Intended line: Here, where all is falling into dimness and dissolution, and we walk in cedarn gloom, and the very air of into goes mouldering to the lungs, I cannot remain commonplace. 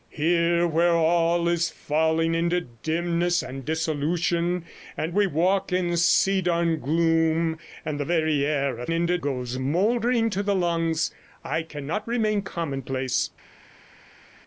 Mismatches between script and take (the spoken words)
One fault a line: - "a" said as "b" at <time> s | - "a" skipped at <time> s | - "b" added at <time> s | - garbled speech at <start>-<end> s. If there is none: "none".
none